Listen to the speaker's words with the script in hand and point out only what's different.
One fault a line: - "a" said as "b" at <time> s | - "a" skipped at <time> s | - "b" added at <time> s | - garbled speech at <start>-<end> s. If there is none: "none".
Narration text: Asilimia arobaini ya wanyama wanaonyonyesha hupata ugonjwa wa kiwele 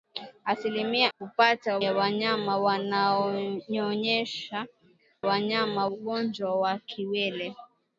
- "arobaini" said as "hupata" at 1.2 s
- "hupata" said as "wanyama" at 5.2 s